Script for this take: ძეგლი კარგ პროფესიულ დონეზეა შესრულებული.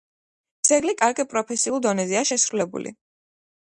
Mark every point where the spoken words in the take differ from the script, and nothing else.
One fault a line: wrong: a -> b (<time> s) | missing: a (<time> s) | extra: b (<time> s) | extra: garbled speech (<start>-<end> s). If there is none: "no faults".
no faults